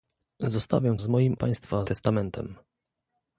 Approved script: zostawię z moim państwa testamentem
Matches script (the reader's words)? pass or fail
pass